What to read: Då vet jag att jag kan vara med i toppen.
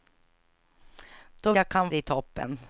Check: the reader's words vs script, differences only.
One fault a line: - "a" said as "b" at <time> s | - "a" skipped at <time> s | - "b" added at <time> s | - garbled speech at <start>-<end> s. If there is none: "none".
- "vet" skipped at 1.5 s
- "att jag" skipped at 1.7 s
- "vara med" skipped at 1.9 s